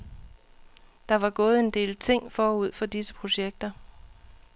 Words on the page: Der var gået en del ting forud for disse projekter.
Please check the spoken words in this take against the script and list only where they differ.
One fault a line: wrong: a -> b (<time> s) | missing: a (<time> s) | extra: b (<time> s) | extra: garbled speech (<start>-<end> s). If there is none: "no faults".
no faults